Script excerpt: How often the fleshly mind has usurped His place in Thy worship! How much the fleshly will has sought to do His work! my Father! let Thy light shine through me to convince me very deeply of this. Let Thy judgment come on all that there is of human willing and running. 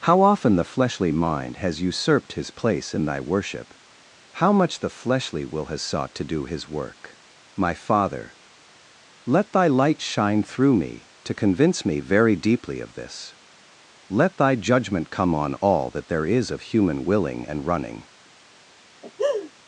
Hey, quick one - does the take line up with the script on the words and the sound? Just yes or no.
no